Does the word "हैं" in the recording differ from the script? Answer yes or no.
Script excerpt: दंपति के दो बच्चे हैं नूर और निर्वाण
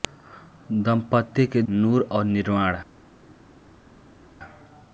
yes